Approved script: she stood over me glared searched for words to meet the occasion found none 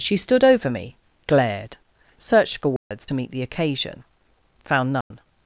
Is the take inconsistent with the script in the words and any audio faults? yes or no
yes